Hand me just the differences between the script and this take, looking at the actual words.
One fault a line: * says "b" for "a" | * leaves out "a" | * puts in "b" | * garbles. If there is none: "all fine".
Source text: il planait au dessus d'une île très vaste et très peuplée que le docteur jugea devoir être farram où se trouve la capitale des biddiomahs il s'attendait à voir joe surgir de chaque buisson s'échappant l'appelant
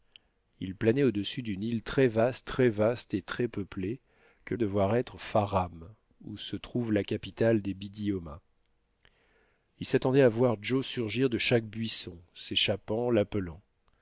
* puts in "très vaste"
* leaves out "le docteur jugea"